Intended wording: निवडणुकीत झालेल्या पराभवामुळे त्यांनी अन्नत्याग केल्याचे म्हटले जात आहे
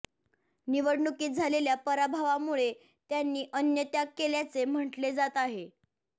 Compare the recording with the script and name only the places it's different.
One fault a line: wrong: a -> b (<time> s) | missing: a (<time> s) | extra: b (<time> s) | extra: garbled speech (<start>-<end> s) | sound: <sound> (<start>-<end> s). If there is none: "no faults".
no faults